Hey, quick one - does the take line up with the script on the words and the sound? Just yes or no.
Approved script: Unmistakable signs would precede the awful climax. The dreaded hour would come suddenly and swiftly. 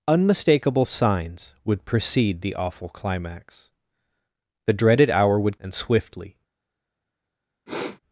no